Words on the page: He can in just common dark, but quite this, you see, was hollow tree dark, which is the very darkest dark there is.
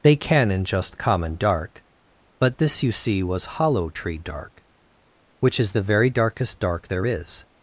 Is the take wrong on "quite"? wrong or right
wrong